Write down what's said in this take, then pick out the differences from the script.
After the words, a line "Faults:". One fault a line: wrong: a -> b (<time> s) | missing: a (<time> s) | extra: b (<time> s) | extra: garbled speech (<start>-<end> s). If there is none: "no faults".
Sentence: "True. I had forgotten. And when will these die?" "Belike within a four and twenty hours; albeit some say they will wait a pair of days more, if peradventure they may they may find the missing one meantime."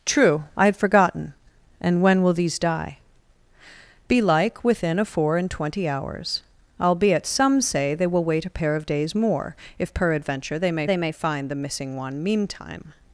"True. I had forgotten. And when will these die?" "Belike within a four and twenty hours; albeit some say they will wait a pair of days more, if peradventure they may they may find the missing one meantime."
Faults:
no faults